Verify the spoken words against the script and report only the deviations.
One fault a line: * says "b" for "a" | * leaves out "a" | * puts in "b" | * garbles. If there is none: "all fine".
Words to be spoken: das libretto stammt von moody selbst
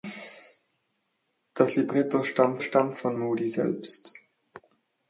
* puts in "stammt"